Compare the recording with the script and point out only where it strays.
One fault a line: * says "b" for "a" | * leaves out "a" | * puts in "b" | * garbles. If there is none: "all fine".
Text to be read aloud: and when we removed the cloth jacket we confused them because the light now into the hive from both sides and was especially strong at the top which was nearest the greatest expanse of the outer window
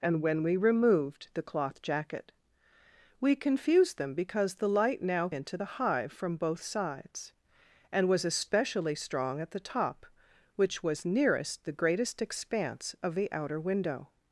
all fine